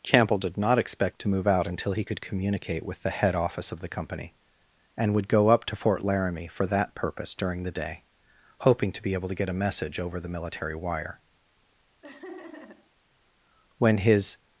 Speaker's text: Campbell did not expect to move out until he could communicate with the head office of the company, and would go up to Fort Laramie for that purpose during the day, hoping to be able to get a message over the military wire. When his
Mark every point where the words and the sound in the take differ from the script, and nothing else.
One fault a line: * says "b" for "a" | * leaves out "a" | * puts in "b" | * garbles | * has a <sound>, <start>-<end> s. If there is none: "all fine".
* has a laugh, 12.0-12.9 s